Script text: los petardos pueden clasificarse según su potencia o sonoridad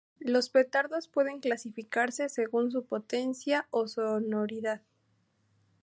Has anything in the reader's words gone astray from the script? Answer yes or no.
no